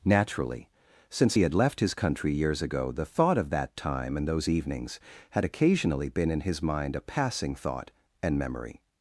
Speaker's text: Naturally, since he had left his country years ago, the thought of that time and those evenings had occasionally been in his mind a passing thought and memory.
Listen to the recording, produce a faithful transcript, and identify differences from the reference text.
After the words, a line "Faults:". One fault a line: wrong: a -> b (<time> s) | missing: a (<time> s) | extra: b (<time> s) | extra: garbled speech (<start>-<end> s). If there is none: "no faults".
Naturally, since he had left his country years ago, the thought of that time and those evenings had occasionally been in his mind a passing thought and memory.
Faults:
no faults